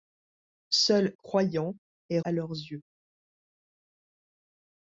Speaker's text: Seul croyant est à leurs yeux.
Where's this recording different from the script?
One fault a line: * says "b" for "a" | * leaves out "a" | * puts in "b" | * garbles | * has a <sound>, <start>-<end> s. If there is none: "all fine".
all fine